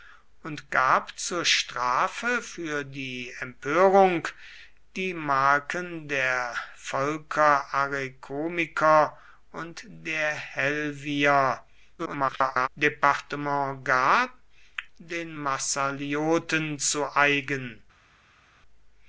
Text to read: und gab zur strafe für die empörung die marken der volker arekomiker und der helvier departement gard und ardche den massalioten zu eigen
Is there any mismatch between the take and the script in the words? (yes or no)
yes